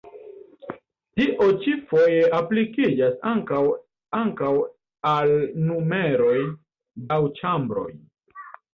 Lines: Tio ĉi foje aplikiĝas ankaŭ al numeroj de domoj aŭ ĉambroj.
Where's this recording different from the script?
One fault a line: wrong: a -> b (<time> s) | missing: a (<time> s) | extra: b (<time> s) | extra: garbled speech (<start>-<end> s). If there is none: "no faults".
extra: ankaŭ (4.2 s)
missing: de domoj (6.3 s)